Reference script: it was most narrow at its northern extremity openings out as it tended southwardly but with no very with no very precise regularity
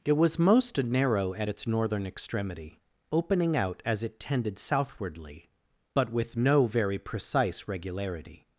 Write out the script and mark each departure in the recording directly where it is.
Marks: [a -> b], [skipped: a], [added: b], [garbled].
it was most narrow at its northern extremity [openings -> opening] out as it tended southwardly but with no very [skipped: with no very] precise regularity